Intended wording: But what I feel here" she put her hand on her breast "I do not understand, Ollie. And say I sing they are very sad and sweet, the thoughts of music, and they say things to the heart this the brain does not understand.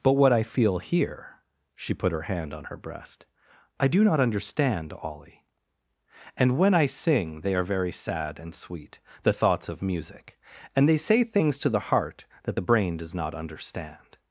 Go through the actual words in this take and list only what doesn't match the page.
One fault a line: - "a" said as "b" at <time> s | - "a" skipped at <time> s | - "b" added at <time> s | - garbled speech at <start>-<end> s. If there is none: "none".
- "say" said as "when" at 6.6 s
- "this" said as "that" at 12.4 s